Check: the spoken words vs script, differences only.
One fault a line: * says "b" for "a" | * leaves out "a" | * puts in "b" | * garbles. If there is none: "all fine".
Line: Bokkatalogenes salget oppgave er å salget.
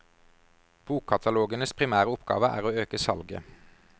* says "primære" for "salget"
* puts in "øke"